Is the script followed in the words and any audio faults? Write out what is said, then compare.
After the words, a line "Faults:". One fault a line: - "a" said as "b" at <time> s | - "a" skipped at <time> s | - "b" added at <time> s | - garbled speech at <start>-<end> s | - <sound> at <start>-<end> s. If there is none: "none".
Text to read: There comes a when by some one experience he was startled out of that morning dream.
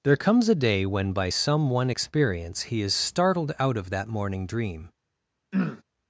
There comes a day when by some one experience he is startled out of that morning dream.
Faults:
- "day" added at 0.6 s
- "was" said as "is" at 2.8 s
- throat clearing at 5.5-5.8 s